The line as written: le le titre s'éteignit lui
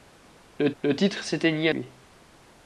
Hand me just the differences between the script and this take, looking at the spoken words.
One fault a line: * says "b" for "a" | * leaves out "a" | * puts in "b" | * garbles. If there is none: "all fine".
all fine